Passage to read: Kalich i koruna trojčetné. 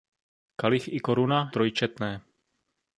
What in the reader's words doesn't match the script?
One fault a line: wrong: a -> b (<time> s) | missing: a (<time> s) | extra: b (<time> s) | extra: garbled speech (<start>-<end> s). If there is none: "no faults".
no faults